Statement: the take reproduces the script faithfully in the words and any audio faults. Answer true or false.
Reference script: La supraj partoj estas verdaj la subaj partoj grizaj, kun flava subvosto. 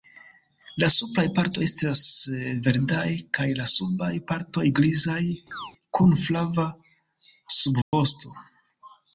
false